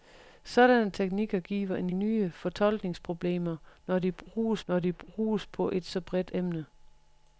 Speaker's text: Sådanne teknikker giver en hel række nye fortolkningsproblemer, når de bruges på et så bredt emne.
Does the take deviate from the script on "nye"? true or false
true